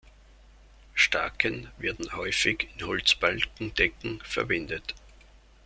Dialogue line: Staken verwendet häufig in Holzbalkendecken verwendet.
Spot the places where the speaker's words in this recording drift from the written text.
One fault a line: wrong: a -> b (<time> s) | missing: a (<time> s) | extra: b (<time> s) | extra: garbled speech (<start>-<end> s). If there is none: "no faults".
wrong: verwendet -> werden (1.8 s)